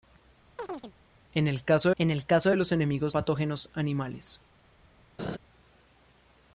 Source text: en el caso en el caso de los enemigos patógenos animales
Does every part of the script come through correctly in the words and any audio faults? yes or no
no